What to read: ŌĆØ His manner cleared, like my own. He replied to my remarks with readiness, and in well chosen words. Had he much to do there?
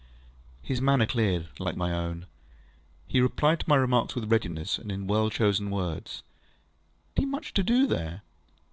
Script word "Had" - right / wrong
wrong